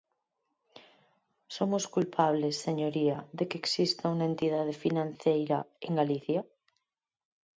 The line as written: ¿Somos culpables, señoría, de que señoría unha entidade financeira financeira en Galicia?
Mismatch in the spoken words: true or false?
true